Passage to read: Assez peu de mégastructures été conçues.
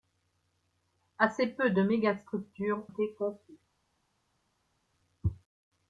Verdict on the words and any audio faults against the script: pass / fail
pass